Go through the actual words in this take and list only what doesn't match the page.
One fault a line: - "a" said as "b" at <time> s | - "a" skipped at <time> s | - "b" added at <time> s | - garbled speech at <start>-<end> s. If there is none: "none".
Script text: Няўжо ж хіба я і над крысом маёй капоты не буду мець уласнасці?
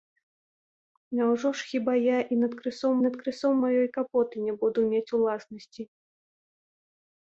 - "над крысом" added at 3.1 s